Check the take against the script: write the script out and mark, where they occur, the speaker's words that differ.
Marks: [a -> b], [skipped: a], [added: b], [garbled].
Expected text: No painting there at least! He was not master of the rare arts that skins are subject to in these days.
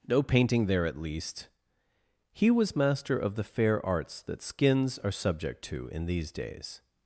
No painting there at least! He was [skipped: not] master of the [rare -> fair] arts that skins are subject to in these days.